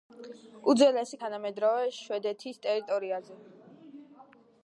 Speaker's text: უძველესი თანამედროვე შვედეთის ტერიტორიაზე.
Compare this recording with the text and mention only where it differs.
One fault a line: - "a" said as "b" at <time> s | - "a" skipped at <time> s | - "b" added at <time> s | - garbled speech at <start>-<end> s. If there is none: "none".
none